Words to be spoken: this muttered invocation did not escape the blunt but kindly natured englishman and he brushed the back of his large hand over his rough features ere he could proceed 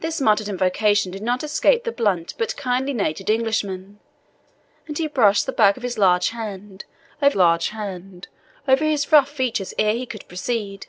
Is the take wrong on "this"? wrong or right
right